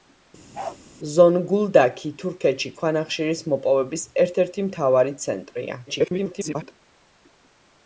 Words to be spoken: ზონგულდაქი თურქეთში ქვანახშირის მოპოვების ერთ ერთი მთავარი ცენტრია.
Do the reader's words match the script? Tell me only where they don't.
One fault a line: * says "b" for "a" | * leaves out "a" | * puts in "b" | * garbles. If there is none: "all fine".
* garbles